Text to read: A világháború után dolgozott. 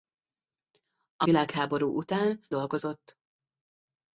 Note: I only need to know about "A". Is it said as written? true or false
true